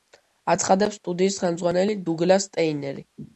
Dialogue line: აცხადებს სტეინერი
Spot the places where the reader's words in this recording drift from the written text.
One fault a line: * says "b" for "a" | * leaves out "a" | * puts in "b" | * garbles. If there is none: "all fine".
* puts in "სტუდიის ხელმძღვანელი დუგლას"